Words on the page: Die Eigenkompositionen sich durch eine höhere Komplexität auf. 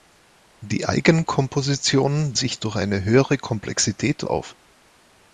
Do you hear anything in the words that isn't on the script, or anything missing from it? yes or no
no